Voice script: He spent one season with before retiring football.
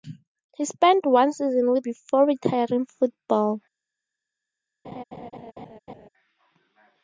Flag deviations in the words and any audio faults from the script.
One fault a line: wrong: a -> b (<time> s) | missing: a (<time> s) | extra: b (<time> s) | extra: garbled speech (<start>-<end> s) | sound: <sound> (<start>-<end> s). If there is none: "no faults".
sound: laugh (4.8-6.1 s)